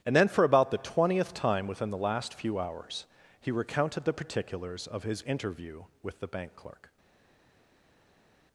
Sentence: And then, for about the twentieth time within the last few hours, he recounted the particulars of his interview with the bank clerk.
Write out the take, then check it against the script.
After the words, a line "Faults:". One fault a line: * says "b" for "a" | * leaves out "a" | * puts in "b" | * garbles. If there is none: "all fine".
And then, for about the twentieth time within the last few hours, he recounted the particulars of his interview with the bank clerk.
Faults:
all fine